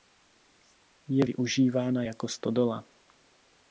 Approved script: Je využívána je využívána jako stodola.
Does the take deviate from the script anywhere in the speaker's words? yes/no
yes